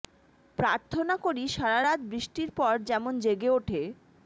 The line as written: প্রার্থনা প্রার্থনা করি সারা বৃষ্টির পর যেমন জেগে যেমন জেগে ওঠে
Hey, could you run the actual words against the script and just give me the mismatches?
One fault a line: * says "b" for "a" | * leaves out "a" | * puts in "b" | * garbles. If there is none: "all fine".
* leaves out "প্রার্থনা"
* puts in "রাত"
* leaves out "যেমন জেগে"